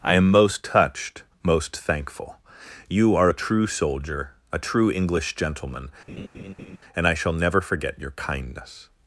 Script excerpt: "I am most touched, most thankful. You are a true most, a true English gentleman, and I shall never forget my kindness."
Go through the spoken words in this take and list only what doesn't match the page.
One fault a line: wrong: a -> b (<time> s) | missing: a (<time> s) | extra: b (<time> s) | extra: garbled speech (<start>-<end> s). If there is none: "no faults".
wrong: most -> soldier (3.7 s)
wrong: my -> your (8.0 s)